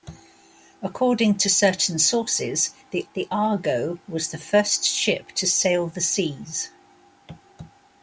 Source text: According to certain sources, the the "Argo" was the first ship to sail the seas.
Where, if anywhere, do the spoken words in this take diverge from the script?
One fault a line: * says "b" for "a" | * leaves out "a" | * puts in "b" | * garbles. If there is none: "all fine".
all fine